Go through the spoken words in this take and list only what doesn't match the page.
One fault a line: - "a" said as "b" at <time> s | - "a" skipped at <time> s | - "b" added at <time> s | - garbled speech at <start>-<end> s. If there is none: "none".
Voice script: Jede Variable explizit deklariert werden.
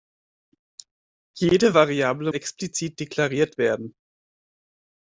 none